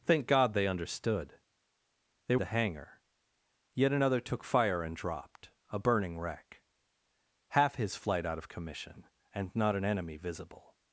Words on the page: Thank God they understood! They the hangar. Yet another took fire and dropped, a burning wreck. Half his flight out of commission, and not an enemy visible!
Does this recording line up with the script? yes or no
yes